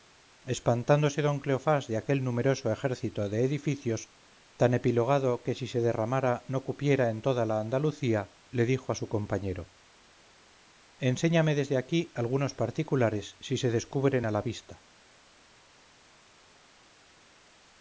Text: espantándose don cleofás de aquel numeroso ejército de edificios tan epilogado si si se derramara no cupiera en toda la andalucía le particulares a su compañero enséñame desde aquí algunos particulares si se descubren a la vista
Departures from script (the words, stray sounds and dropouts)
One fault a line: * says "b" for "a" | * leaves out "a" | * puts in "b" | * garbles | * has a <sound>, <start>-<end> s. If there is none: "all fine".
* says "que" for "si"
* says "dijo" for "particulares"